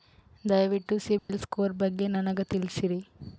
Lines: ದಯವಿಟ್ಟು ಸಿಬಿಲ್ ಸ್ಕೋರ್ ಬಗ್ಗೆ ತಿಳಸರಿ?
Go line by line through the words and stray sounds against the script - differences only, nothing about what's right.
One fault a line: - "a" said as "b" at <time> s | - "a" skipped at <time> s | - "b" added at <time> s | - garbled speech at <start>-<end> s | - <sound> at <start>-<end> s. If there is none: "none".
- dropout at 1.2-1.3 s
- "ನನಗ" added at 2.1 s